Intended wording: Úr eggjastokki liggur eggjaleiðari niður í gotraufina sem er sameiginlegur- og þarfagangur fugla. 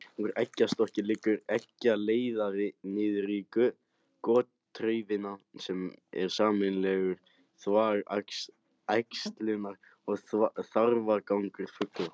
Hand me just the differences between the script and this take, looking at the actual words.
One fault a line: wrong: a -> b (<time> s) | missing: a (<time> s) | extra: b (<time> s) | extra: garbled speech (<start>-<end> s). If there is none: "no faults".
extra: þvag æxlunar (7.6 s)